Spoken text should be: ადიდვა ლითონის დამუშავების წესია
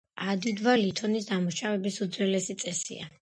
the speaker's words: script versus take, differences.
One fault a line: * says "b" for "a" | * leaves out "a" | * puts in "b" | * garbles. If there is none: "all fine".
* puts in "უძველესი"